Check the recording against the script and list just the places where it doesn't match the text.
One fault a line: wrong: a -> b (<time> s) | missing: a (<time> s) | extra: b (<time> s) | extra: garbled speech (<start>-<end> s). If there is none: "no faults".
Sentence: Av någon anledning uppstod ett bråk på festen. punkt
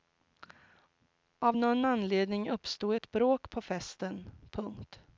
no faults